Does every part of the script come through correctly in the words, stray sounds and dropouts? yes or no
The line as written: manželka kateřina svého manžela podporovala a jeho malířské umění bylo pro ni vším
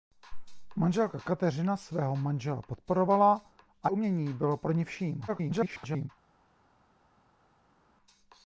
no